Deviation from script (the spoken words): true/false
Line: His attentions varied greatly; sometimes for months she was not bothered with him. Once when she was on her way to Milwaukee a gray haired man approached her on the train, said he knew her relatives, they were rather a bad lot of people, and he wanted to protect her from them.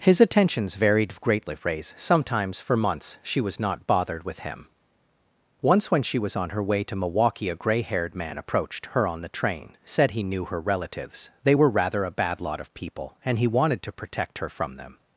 true